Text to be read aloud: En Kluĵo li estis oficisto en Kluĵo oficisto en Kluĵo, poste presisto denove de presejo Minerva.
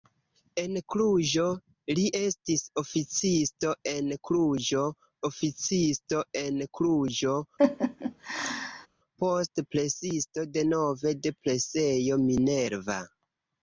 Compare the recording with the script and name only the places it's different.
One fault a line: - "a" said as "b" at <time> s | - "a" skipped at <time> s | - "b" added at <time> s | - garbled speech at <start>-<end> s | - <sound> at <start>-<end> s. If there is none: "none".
- laugh at 7.6-8.9 s